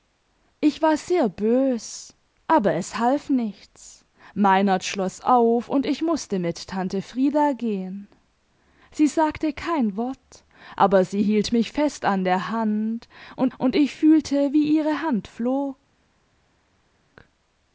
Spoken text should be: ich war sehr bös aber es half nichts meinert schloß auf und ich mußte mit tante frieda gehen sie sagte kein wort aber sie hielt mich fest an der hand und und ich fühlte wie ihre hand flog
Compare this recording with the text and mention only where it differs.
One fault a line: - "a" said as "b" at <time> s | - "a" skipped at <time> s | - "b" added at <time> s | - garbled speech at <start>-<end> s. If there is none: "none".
none